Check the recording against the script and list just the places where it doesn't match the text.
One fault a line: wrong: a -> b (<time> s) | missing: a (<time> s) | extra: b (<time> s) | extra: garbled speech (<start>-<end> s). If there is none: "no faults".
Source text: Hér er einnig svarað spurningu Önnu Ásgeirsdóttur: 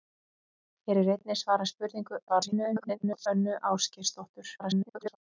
extra: garbled speech (2.3-3.3 s)
extra: garbled speech (4.6-5.2 s)